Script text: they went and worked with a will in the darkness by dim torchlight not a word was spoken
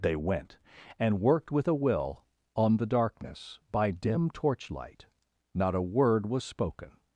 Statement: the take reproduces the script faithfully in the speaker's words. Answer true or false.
false